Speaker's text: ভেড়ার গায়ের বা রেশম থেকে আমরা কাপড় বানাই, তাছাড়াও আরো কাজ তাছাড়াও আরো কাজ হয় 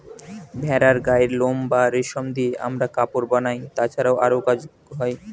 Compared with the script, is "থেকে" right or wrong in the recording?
wrong